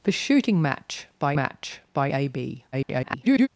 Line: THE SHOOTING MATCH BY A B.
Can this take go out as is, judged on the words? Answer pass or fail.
fail